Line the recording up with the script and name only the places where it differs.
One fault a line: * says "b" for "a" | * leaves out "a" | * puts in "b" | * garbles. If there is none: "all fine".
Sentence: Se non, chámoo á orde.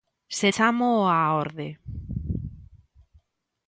* leaves out "non"